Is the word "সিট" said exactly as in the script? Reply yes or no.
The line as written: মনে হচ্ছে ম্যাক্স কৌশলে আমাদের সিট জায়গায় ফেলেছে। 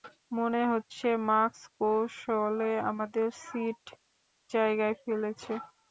yes